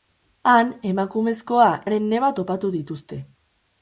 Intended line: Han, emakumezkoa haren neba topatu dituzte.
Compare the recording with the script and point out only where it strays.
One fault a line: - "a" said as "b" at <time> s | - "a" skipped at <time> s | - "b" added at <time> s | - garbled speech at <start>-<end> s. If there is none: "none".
none